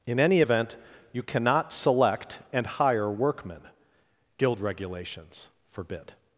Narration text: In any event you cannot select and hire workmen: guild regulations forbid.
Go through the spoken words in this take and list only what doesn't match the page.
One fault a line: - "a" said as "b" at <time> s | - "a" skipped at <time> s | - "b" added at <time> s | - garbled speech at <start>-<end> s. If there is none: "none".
none